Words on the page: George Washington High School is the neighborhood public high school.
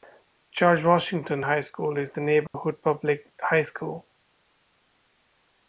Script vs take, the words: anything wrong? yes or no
no